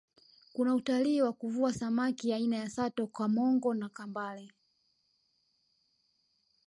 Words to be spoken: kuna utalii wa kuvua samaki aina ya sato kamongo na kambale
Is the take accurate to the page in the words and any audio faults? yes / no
yes